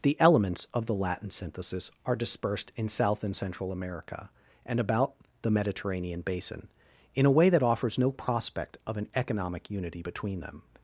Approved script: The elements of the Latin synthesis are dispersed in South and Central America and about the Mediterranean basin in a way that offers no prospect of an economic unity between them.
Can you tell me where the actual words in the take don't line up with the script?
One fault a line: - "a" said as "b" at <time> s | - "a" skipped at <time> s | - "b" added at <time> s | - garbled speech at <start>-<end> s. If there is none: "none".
none